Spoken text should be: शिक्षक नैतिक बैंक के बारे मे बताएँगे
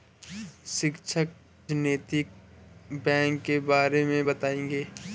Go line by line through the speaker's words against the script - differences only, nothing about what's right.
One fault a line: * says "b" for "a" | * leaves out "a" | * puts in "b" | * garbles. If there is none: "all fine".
all fine